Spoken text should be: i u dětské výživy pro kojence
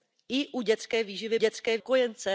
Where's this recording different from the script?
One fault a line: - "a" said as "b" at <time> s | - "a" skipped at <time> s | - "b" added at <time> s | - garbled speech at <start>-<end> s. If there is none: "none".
- "pro" said as "dětské" at 1.4 s